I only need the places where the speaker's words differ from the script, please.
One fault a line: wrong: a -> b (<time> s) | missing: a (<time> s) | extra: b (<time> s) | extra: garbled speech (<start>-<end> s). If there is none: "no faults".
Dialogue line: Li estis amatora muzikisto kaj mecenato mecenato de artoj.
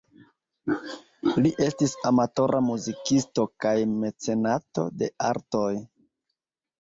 missing: mecenato (4.9 s)